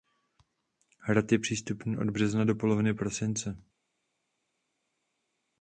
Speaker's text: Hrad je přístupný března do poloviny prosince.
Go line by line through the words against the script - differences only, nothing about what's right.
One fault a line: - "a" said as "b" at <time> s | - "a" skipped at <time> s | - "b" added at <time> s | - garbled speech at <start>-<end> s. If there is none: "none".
- "od" added at 2.0 s